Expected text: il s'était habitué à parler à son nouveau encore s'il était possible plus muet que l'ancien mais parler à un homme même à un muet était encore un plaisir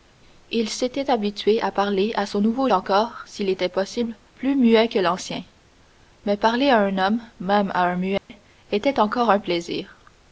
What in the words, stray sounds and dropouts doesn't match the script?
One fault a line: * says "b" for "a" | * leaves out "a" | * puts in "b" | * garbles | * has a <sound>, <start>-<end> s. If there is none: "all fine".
* has a dropout, 8.2-8.3 s